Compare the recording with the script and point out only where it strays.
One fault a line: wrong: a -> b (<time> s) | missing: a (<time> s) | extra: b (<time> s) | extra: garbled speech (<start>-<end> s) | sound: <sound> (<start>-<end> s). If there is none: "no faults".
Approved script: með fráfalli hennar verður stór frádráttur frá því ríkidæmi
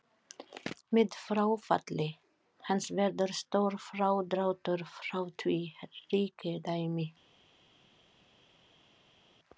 wrong: hennar -> hans (2.7 s)